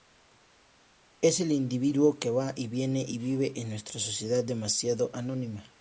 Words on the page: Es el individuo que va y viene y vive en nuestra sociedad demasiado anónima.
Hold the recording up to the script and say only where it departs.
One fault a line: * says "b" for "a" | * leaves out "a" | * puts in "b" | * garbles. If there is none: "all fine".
all fine